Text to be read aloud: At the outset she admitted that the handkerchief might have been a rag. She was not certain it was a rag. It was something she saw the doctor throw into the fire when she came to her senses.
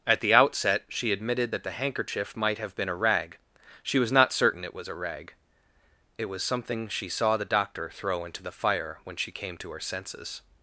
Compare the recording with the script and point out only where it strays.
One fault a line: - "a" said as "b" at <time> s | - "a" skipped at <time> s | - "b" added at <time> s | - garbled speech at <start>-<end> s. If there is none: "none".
none